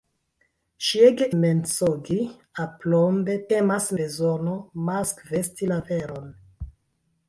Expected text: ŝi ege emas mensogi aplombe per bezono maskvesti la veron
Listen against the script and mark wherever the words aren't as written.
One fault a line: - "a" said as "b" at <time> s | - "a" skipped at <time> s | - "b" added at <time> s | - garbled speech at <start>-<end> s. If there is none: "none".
- "emas" skipped at 1.2 s
- "per" said as "emas" at 3.6 s